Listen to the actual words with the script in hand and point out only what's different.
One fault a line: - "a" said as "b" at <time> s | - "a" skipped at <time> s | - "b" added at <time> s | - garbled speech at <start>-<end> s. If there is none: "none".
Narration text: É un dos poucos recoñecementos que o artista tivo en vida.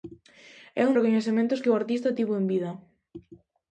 - "dos poucos" skipped at 0.9 s